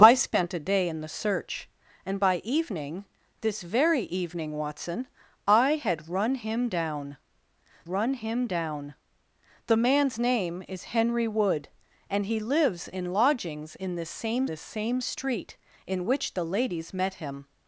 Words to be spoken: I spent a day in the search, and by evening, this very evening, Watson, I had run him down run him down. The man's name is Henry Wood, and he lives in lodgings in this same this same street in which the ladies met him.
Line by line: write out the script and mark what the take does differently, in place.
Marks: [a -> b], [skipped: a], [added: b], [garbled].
I spent a day in the search, and by evening, this very evening, Watson, I had run him down run him down. The man's name is Henry Wood, and he lives in lodgings in this same this same street in which the ladies met him.